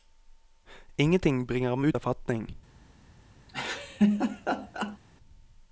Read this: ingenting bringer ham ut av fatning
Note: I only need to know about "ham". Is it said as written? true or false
true